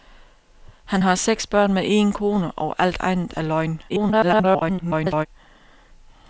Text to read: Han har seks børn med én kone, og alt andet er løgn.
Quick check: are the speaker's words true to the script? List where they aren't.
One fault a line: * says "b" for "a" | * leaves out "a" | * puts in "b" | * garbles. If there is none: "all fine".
* garbles